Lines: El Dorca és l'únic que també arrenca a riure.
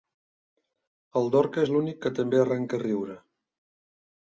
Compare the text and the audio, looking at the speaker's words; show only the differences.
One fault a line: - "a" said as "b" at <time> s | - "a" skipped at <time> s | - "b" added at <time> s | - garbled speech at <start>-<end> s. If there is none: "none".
none